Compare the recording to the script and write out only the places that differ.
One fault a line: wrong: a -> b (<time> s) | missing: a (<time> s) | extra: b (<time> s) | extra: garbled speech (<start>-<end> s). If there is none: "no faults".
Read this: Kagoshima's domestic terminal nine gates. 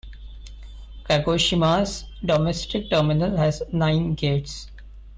extra: has (3.4 s)